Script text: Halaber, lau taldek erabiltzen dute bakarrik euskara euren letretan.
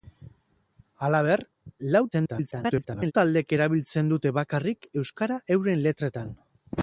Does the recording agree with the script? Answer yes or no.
no